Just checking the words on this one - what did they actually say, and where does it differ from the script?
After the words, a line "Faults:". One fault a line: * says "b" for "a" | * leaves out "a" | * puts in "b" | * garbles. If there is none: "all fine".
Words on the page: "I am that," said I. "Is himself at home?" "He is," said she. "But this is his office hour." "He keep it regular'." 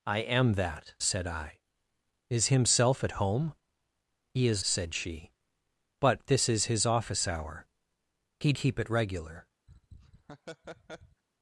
"I am that," said I. "Is himself at home?" "He is," said she. "But this is his office hour." "He keep it regular'."
Faults:
all fine